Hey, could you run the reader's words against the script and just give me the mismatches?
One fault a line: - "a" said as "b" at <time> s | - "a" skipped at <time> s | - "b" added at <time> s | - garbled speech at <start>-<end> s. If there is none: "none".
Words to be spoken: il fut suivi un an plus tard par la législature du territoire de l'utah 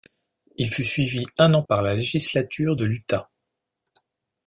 - "plus tard" skipped at 1.6 s
- "du territoire" skipped at 2.8 s